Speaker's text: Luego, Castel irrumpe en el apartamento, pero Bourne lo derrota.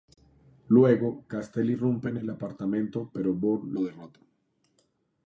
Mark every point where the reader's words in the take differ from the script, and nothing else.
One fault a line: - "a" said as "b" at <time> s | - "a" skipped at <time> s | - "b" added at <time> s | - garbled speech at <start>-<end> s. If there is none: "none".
none